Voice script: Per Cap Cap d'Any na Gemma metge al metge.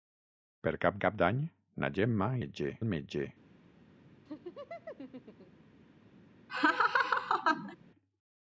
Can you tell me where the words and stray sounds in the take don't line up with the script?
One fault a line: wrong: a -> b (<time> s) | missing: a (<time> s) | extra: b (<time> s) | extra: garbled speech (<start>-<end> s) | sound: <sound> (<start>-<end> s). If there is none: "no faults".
sound: laugh (4.3-5.7 s)
sound: laugh (6.5-7.8 s)